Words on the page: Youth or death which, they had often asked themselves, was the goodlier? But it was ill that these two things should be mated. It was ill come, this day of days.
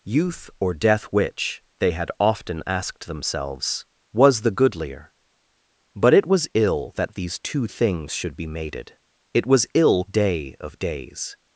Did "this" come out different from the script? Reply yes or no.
yes